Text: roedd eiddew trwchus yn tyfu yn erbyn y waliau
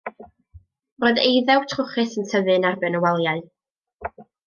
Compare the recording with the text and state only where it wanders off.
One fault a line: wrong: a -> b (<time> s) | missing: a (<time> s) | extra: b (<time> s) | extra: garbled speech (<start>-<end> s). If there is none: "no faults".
no faults